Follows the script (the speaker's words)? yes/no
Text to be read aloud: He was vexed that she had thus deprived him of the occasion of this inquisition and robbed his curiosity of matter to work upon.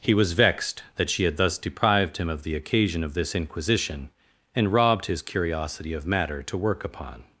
yes